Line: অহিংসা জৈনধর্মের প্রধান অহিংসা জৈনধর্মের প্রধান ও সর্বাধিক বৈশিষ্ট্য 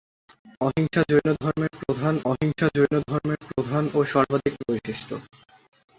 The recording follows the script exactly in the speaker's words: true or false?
true